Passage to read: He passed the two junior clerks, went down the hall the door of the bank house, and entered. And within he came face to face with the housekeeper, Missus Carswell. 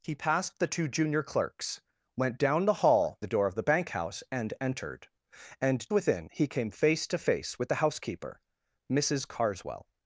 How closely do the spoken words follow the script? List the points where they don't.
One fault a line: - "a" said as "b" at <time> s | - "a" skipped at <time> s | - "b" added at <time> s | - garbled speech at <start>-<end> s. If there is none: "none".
none